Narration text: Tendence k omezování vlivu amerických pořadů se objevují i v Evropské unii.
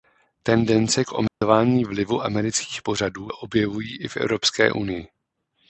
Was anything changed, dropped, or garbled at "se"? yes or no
yes